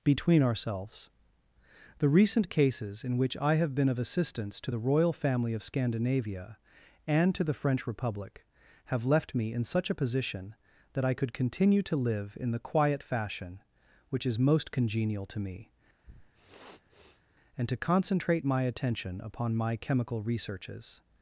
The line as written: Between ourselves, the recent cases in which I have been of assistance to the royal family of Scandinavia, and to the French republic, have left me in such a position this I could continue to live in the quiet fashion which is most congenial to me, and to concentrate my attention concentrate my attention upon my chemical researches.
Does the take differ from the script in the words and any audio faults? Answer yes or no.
yes